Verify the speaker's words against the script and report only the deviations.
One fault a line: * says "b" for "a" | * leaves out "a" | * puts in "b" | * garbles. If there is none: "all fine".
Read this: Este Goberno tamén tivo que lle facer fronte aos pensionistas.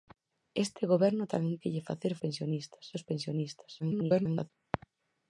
* leaves out "tivo"
* says "pensionistas" for "fronte"
* garbles